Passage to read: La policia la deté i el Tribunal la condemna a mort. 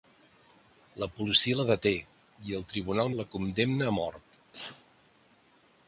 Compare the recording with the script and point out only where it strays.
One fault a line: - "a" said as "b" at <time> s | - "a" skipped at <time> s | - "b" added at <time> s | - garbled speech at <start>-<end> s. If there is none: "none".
none